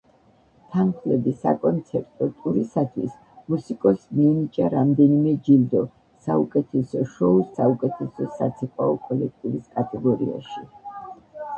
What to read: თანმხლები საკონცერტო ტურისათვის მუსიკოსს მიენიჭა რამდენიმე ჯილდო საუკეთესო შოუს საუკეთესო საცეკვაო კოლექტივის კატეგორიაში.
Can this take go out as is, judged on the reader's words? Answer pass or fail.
pass